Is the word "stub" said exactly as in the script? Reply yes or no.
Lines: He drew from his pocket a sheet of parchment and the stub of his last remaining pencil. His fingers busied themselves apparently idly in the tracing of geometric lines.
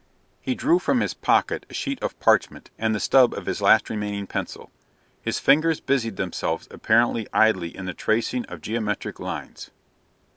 yes